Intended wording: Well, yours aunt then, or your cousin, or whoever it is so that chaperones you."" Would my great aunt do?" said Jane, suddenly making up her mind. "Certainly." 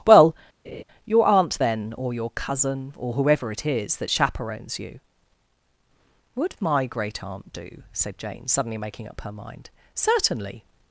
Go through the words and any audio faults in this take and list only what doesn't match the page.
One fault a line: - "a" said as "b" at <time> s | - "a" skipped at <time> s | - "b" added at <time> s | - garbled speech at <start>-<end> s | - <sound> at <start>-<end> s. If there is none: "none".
- laugh at 0.6-0.8 s
- "yours" said as "your" at 1.0 s
- "so" skipped at 4.0 s